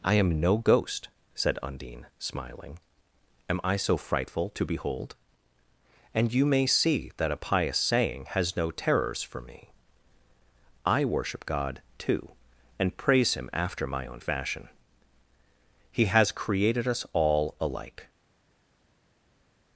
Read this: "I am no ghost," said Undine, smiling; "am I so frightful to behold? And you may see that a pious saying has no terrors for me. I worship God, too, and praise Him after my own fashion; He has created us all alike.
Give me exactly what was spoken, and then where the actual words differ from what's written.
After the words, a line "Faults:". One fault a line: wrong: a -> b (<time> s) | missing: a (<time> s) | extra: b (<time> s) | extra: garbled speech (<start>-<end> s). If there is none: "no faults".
"I am no ghost," said Undine, smiling; "am I so frightful to behold? And you may see that a pious saying has no terrors for me. I worship God, too, and praise Him after my own fashion; He has created us all alike.
Faults:
no faults